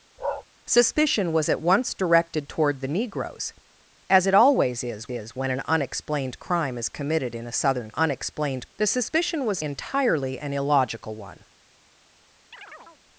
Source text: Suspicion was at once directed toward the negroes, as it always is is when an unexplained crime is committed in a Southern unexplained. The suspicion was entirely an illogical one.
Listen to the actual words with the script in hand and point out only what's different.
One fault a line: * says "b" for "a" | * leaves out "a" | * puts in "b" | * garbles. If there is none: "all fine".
all fine